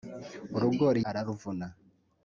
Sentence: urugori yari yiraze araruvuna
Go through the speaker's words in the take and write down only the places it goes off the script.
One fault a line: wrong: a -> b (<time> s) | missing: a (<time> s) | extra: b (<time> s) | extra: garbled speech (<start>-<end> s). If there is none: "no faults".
missing: yari yiraze (1.0 s)